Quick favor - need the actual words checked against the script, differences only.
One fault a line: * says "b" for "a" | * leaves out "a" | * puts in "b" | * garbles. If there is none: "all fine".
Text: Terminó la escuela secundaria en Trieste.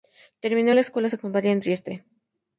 all fine